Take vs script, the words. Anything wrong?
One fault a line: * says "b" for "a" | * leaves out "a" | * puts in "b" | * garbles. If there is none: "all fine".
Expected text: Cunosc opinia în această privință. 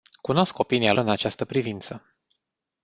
all fine